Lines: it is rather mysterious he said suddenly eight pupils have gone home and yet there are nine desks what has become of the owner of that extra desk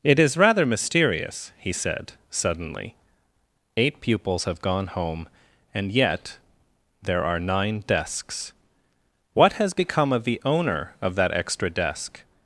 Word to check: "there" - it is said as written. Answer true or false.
true